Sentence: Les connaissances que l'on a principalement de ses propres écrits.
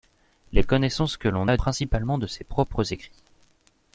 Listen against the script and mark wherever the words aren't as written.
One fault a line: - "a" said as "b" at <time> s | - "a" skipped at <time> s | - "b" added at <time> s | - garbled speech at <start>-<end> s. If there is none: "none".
none